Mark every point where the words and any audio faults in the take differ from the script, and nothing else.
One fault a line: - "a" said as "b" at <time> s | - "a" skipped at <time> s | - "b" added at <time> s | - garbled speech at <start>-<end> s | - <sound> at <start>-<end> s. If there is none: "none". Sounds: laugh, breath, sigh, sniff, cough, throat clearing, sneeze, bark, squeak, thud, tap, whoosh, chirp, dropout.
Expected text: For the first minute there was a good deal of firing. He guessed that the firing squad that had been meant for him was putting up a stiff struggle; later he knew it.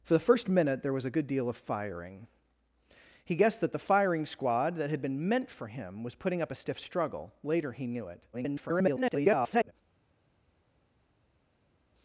- garbled speech at 8.3-9.7 s